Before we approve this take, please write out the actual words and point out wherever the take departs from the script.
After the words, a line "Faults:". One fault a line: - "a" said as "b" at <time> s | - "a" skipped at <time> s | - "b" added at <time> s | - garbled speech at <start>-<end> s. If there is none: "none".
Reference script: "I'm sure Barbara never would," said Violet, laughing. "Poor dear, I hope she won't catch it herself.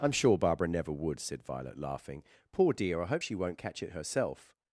"I'm sure Barbara never would," said Violet, laughing. "Poor dear, I hope she won't catch it herself.
Faults:
none